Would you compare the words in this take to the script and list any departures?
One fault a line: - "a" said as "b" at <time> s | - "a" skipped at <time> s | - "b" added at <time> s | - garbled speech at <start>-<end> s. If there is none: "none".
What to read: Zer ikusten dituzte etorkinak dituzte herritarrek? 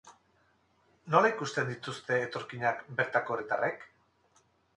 - "Zer" said as "Nola" at 1.1 s
- "dituzte" said as "bertako" at 3.0 s